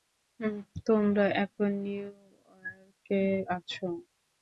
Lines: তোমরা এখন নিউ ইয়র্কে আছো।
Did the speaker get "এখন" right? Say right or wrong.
right